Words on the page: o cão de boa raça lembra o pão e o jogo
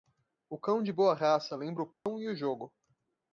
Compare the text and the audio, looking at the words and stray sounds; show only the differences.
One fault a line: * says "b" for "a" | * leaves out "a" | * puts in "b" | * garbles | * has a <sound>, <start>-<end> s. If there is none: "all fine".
* has a dropout, 1.9-2.1 s